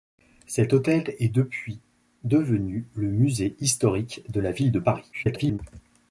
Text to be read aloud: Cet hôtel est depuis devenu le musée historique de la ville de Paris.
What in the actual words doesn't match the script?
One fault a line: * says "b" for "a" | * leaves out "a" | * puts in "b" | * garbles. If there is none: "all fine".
* garbles